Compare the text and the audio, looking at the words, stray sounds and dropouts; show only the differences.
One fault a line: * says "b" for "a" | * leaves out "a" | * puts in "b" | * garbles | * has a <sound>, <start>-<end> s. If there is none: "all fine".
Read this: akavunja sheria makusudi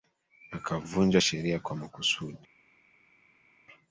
* puts in "kwa"